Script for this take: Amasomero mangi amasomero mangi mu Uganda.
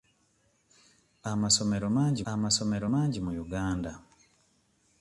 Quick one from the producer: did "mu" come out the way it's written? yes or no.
yes